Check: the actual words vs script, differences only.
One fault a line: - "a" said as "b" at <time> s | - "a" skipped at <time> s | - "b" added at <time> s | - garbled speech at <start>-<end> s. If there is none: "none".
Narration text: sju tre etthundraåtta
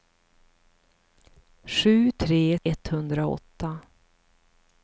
none